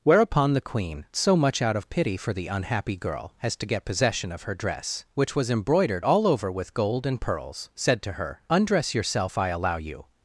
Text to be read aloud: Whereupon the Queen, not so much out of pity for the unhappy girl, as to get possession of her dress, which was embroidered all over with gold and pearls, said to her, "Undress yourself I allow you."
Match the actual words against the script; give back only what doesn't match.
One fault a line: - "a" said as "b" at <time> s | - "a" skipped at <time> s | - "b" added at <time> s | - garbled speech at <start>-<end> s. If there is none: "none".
- "not" skipped at 1.1 s